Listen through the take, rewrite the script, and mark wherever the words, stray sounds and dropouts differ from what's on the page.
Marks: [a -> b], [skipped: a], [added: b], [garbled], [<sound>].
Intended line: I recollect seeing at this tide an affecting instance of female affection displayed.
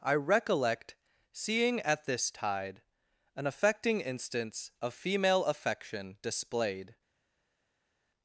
I recollect seeing at this tide an affecting instance of female affection displayed.